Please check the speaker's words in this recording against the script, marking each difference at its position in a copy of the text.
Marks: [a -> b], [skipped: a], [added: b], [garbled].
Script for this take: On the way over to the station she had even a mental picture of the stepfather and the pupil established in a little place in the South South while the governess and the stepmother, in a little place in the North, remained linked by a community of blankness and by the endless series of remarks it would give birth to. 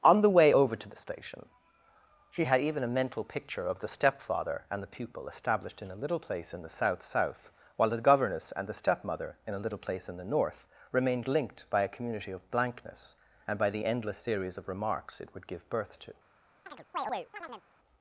On the way over to the station she had even a mental picture of the stepfather and the pupil established in a little place in the South South while the governess and the stepmother, in a little place in the North, remained linked by a community of blankness and by the endless series of remarks it would give birth to.